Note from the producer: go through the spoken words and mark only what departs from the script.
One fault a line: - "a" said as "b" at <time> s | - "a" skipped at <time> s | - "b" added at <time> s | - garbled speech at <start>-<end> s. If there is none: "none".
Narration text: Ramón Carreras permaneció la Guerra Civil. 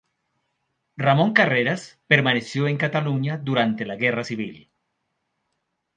- "en Cataluña durante" added at 2.7 s